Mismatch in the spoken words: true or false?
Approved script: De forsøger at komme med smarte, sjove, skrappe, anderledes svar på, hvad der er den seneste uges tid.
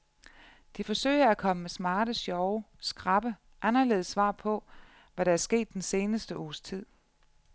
true